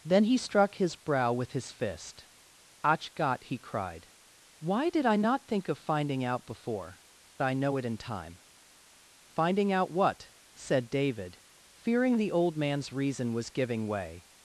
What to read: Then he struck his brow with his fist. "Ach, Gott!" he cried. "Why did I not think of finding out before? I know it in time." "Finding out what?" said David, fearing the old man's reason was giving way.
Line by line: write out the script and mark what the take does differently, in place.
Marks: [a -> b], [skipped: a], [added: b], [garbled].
Then he struck his brow with his fist. "Ach, Gott!" he cried. "Why did I not think of finding out before? I know it in time." "Finding out what?" said David, fearing the old man's reason was giving way.